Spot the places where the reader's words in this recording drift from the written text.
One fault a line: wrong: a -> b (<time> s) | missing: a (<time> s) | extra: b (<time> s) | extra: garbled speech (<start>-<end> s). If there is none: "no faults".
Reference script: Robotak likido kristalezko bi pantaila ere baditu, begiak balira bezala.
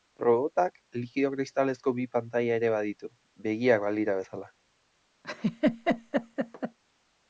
no faults